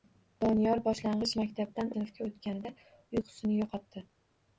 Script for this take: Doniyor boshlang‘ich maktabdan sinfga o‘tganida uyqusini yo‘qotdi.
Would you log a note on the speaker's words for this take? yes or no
no